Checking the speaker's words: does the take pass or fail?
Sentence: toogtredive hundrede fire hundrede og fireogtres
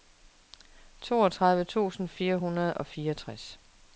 fail